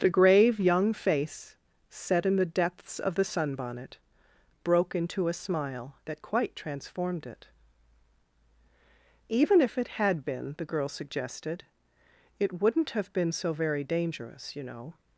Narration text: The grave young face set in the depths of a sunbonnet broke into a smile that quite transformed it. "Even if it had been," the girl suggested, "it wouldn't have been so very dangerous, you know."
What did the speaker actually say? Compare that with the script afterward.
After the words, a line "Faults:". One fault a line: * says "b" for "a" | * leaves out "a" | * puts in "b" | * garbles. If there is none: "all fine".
The grave young face set in the depths of the sunbonnet broke into a smile that quite transformed it. "Even if it had been," the girl suggested, "it wouldn't have been so very dangerous, you know."
Faults:
* says "the" for "a"